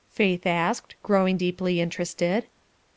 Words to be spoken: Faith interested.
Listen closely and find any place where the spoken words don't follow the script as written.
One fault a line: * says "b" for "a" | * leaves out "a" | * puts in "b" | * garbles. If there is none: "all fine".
* puts in "asked growing deeply"